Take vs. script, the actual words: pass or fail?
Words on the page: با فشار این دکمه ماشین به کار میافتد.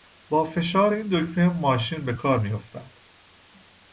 pass